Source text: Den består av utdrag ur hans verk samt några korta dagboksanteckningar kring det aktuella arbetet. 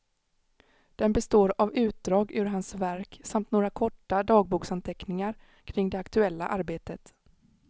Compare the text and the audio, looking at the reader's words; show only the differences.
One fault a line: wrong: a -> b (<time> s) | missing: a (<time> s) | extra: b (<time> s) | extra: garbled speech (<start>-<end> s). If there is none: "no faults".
no faults